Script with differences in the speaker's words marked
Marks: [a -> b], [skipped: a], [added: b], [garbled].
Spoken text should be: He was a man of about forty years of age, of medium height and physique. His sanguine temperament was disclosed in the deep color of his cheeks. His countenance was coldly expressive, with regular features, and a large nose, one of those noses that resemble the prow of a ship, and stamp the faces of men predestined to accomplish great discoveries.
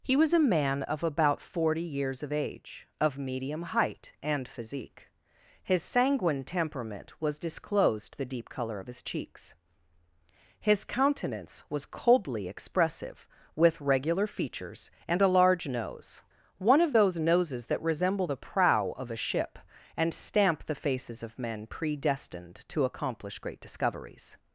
He was a man of about forty years of age, of medium height and physique. His sanguine temperament was disclosed [skipped: in] the deep color of his cheeks. His countenance was coldly expressive, with regular features, and a large nose, one of those noses that resemble the prow of a ship, and stamp the faces of men predestined to accomplish great discoveries.